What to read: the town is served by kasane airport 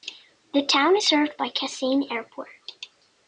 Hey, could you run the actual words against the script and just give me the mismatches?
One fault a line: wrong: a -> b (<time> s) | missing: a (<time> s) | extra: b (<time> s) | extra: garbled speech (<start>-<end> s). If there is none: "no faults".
no faults